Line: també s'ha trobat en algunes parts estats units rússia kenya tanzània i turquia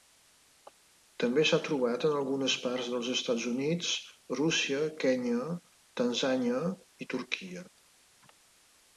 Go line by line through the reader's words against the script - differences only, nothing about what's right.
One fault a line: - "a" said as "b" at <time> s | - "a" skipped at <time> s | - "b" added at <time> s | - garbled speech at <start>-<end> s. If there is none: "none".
- "dels" added at 2.9 s